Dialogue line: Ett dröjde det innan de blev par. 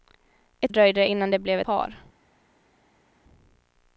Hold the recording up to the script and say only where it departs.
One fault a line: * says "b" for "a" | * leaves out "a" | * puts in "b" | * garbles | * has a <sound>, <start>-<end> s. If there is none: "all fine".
all fine